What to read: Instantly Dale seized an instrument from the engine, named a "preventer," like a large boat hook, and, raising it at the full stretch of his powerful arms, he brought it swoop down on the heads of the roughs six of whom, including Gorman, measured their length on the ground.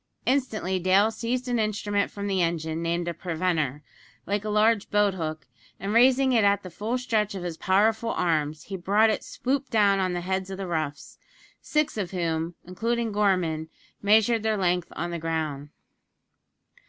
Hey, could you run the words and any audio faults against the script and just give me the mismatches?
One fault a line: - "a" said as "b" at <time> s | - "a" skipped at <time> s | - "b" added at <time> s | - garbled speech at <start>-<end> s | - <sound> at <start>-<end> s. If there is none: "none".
none